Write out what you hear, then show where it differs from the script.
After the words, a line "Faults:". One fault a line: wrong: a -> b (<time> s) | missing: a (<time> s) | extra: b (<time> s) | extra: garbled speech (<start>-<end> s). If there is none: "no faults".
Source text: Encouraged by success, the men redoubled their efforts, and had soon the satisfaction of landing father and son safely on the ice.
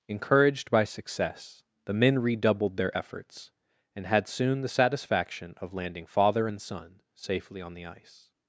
Encouraged by success, the men redoubled their efforts, and had soon the satisfaction of landing father and son safely on the ice.
Faults:
no faults